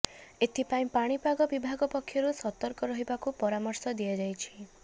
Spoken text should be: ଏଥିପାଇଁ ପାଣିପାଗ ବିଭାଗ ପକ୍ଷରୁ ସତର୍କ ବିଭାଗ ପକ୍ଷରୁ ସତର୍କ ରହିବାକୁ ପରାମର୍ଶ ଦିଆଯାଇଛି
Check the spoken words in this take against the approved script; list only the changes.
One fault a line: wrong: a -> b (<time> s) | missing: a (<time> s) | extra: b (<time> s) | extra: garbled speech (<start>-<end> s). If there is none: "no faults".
missing: ବିଭାଗ ପକ୍ଷରୁ ସତର୍କ (2.9 s)